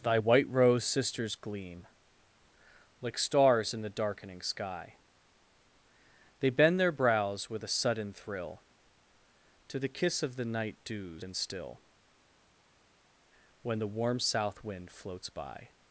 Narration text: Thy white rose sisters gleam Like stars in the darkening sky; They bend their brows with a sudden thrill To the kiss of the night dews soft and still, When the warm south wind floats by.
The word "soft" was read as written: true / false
false